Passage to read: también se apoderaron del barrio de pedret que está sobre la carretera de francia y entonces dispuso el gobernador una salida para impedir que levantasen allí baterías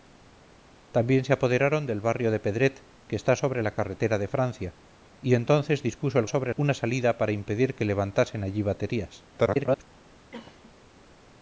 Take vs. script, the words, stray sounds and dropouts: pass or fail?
fail